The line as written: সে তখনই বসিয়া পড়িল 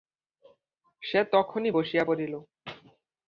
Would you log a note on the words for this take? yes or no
no